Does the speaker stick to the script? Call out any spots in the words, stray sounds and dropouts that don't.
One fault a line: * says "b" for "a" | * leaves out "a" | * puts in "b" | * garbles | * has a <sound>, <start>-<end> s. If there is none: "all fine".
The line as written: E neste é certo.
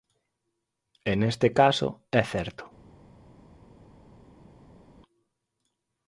* puts in "caso"